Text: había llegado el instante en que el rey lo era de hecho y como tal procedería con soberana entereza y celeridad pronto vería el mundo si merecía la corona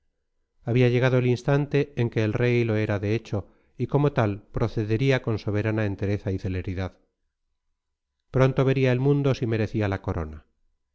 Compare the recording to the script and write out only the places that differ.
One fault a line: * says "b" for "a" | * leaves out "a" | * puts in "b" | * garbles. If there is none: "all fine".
all fine